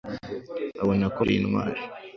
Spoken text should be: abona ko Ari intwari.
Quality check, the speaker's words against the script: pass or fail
pass